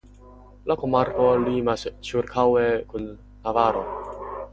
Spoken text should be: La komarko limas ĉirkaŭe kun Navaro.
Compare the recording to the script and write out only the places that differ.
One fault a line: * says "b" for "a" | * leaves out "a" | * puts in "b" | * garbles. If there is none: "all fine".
all fine